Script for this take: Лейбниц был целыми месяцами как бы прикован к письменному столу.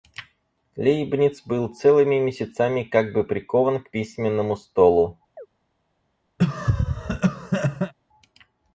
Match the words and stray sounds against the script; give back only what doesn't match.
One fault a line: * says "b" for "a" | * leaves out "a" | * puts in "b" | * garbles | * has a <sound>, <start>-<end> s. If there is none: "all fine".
* has a chirp, 5.4-5.5 s
* has a cough, 6.4-7.9 s